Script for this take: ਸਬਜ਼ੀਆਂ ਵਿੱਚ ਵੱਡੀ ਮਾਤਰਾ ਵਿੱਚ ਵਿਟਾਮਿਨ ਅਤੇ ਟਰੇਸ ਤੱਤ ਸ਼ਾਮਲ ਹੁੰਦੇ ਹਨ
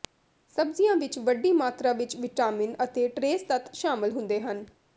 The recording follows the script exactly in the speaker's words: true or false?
true